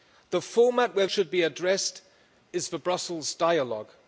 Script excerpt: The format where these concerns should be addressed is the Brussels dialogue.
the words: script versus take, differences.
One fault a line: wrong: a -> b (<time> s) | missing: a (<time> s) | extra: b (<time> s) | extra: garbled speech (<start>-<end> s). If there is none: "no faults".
missing: these concerns (1.1 s)